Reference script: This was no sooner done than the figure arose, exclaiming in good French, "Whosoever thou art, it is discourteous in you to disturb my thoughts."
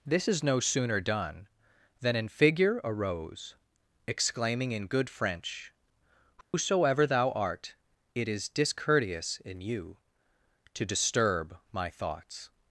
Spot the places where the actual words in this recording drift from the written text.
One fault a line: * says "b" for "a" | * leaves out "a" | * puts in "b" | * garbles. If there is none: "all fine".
* says "is" for "was"
* says "an" for "the"